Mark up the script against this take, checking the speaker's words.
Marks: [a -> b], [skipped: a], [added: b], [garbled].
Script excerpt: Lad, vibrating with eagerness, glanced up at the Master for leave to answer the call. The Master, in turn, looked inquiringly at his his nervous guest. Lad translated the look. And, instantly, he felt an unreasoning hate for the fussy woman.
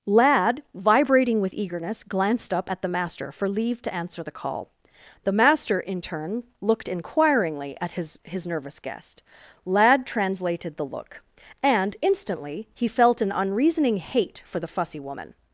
Lad, vibrating with eagerness, glanced up at the Master for leave to answer the call. The Master, in turn, looked inquiringly at his his nervous guest. Lad translated the look. And, instantly, he felt an unreasoning hate for the fussy woman.